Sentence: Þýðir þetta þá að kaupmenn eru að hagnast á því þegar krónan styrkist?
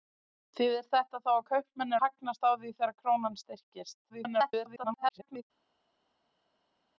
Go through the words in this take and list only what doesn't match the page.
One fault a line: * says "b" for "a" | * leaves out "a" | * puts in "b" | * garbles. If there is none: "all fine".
* leaves out "eru"
* garbles